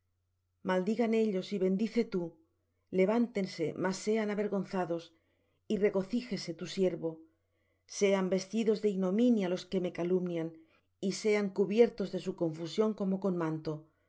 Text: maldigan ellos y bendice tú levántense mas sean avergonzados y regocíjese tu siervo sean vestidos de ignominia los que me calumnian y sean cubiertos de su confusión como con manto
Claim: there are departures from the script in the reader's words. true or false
false